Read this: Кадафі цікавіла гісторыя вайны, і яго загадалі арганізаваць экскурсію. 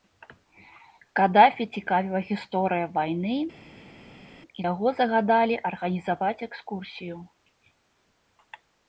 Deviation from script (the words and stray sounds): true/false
false